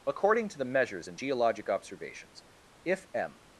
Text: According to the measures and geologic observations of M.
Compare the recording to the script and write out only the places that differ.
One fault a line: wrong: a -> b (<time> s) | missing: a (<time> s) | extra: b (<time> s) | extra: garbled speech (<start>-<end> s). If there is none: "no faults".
wrong: of -> if (2.8 s)